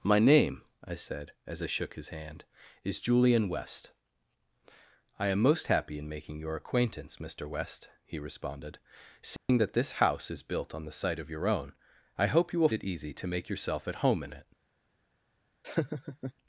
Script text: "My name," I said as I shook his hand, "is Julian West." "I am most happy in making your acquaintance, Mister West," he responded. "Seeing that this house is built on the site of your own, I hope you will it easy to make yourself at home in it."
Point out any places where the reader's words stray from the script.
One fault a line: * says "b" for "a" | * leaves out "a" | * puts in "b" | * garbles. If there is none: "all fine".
all fine